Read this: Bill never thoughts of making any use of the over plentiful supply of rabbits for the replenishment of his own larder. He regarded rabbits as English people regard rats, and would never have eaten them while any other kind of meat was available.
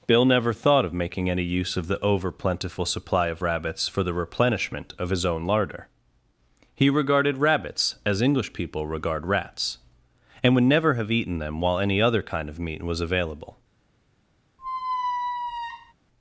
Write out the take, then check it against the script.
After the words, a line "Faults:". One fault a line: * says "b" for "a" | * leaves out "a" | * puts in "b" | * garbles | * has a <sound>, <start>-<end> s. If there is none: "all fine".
Bill never thought of making any use of the over plentiful supply of rabbits for the replenishment of his own larder. He regarded rabbits as English people regard rats, and would never have eaten them while any other kind of meat was available.
Faults:
* says "thought" for "thoughts"
* has a squeak, 14.6-15.9 s